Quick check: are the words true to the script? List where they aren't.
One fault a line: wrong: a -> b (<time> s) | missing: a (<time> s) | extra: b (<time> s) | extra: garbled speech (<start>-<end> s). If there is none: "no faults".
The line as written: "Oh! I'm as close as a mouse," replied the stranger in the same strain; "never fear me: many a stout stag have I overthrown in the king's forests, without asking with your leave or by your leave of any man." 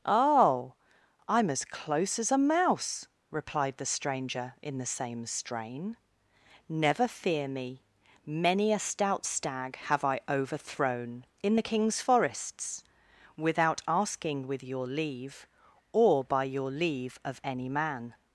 no faults